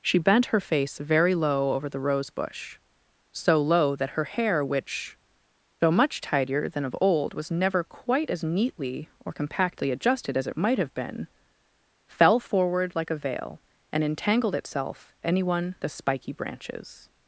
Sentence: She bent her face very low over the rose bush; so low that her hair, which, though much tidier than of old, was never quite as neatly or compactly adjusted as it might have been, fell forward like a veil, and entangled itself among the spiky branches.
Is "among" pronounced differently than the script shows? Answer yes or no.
yes